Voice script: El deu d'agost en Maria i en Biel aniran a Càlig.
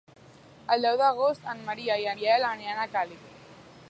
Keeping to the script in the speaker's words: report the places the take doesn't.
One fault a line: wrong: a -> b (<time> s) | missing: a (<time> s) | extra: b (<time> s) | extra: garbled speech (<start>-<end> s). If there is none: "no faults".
missing: en (2.1 s)